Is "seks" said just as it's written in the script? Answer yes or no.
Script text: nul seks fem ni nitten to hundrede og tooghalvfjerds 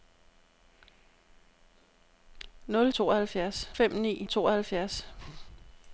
no